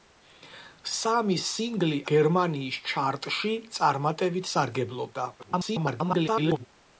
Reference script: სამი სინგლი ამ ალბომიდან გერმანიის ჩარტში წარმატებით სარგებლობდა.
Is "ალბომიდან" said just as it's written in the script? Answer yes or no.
no